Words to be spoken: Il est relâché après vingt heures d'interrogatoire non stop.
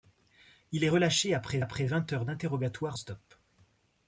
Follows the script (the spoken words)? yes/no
no